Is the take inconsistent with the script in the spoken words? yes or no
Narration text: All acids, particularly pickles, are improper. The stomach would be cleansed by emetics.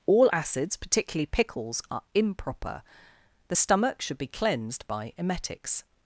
yes